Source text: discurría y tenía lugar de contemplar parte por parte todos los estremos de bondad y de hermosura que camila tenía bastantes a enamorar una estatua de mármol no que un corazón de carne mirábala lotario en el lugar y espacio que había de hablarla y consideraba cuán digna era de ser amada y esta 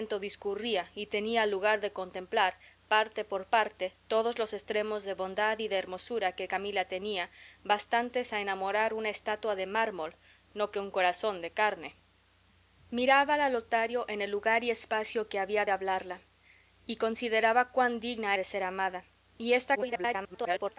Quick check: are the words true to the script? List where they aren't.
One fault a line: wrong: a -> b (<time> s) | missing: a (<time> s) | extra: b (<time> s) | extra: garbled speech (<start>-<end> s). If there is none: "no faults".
missing: era (18.4 s)
extra: garbled speech (19.8-20.8 s)